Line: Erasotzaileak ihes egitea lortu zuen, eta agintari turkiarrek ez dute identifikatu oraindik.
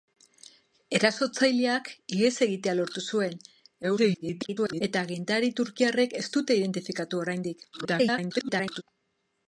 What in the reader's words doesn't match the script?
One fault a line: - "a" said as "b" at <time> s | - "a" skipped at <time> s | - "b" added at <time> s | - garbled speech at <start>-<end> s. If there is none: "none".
- garbled speech at 3.8-4.8 s
- garbled speech at 7.7-8.8 s